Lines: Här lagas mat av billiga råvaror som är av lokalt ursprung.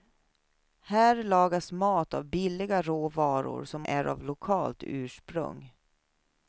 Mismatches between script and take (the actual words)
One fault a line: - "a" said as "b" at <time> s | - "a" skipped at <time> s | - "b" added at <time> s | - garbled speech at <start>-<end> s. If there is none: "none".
none